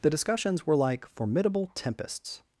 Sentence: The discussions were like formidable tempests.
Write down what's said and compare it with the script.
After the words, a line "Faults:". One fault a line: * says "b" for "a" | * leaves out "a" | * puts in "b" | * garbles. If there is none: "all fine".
The discussions were like formidable tempests.
Faults:
all fine